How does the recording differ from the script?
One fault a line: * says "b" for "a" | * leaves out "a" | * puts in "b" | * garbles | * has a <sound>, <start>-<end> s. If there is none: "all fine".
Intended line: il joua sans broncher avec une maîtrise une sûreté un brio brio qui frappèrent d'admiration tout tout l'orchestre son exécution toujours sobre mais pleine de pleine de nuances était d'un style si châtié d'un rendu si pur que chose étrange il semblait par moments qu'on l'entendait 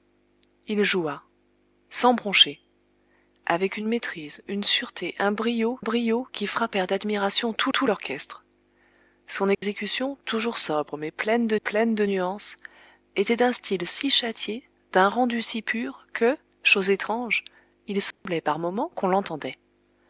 * has a dropout, 9.5-9.6 s
* has a dropout, 18.1-18.3 s